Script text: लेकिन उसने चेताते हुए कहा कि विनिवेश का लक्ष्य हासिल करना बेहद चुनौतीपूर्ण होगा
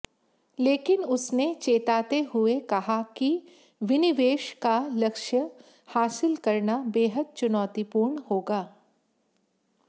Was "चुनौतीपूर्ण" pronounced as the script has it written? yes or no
yes